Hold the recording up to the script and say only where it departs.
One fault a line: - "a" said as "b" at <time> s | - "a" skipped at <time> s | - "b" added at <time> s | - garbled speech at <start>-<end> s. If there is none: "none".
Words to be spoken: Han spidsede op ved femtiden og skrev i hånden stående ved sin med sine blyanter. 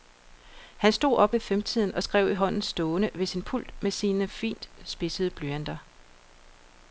- "spidsede" said as "stod" at 0.9 s
- "pult" added at 3.4 s
- "fint spidsede" added at 4.3 s